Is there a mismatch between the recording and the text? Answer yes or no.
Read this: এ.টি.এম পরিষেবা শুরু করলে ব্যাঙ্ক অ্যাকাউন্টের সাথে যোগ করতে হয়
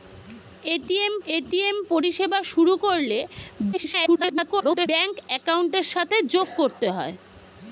yes